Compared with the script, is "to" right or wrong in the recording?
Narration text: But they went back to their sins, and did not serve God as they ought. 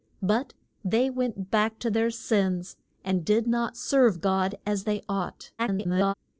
right